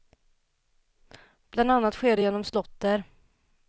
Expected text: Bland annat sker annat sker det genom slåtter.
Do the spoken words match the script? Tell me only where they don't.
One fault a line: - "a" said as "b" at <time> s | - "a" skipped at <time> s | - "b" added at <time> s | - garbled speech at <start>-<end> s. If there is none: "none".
- "annat sker" skipped at 2.2 s